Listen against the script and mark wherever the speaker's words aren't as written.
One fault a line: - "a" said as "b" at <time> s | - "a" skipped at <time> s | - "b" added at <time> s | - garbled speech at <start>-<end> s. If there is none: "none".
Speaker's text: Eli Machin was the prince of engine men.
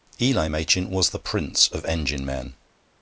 none